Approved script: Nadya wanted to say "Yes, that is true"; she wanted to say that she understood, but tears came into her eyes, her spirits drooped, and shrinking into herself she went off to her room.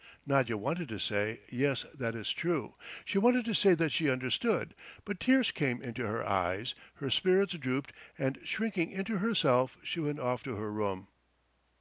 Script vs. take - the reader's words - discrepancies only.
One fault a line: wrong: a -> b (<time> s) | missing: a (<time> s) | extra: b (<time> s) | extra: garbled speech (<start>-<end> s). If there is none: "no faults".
no faults